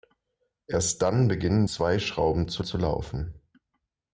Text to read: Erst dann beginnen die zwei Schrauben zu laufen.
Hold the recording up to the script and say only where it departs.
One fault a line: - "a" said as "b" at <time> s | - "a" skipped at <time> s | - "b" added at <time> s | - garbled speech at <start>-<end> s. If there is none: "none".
- "die" skipped at 1.7 s
- "zu" added at 2.6 s